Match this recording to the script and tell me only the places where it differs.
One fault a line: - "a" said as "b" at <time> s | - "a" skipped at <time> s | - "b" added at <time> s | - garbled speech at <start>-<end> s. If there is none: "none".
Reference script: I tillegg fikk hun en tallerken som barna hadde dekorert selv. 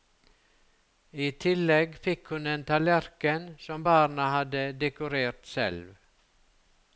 none